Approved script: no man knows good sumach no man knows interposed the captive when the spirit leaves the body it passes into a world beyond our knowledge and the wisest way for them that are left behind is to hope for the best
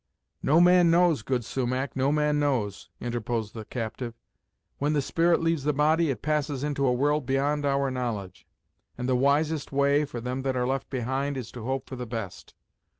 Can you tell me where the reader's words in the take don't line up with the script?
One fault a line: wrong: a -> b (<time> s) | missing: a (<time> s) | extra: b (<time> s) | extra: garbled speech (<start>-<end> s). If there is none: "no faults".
no faults